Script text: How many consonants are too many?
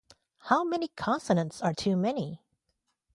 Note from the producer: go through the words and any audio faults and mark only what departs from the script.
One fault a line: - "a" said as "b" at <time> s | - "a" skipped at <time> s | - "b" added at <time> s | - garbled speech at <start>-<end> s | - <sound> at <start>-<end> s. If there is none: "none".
none